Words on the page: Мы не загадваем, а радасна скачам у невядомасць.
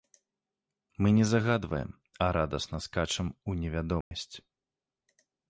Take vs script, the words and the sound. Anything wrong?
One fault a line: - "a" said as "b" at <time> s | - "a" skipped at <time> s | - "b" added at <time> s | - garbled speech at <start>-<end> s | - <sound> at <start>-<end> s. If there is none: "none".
- dropout at 4.0-4.1 s